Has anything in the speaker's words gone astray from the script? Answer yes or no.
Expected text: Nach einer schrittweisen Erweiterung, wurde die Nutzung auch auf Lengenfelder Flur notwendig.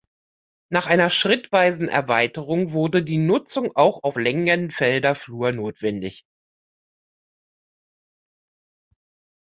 no